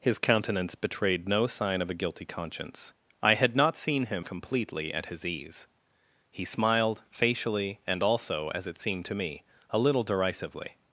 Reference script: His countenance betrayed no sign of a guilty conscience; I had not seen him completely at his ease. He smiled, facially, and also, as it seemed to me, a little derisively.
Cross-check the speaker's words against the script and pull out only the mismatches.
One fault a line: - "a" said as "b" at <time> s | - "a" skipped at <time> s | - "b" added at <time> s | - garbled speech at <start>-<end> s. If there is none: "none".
none